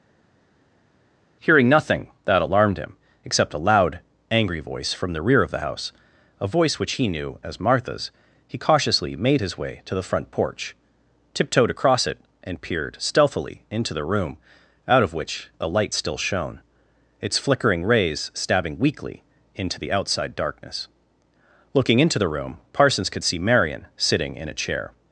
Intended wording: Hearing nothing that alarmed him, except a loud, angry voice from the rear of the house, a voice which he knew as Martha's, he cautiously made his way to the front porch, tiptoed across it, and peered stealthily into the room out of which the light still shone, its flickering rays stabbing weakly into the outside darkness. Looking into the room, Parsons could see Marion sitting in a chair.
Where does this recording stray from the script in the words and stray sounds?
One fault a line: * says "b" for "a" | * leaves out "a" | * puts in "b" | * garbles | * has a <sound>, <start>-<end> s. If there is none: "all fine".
* says "a" for "the"